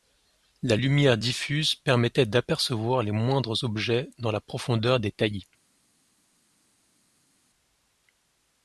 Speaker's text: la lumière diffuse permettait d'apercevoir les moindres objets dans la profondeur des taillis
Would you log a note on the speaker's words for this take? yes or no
no